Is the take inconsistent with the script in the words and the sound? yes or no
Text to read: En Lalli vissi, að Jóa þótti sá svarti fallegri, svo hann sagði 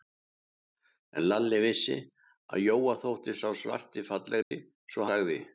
yes